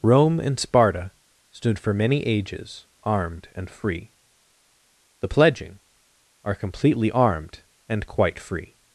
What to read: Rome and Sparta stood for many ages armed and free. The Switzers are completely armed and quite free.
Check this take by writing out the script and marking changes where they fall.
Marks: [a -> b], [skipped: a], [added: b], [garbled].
Rome and Sparta stood for many ages armed and free. The [Switzers -> Pledging] are completely armed and quite free.